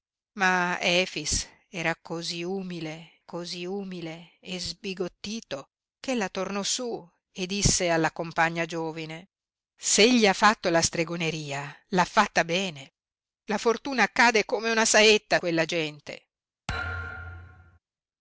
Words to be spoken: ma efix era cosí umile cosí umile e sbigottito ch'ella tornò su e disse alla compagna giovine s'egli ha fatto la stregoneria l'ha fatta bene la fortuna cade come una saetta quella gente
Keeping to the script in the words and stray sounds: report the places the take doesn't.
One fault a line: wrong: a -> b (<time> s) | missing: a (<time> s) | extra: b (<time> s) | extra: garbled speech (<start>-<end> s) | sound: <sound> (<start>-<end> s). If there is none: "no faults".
sound: thud (16.7-17.8 s)